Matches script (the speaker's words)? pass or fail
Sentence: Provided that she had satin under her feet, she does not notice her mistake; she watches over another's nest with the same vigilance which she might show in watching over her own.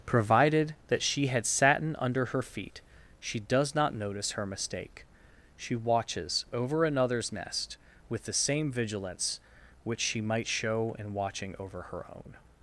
pass